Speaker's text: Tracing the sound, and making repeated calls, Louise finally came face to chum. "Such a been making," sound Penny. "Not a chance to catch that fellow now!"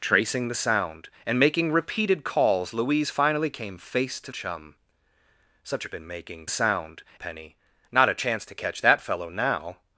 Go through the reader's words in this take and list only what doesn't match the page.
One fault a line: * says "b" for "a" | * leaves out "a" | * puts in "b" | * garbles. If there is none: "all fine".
all fine